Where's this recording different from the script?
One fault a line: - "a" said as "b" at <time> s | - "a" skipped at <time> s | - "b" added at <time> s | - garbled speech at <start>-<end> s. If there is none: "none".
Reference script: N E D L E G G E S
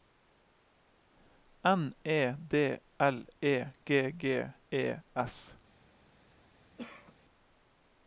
none